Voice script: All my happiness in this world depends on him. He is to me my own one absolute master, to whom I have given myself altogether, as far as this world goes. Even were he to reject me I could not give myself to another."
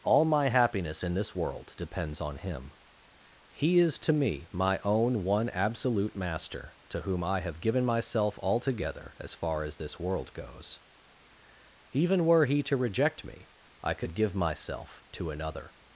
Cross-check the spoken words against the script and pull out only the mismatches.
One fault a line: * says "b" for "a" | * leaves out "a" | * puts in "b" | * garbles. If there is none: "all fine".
* leaves out "not"